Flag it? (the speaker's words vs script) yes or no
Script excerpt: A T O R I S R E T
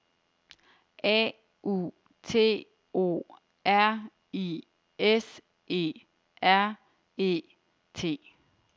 yes